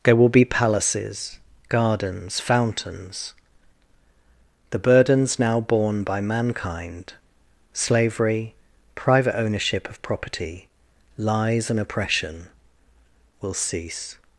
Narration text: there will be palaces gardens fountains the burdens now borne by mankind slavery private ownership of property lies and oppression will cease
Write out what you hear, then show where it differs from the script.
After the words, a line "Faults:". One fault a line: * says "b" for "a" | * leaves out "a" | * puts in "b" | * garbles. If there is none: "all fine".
there will be palaces gardens fountains the burdens now borne by mankind slavery private ownership of property lies and oppression will cease
Faults:
all fine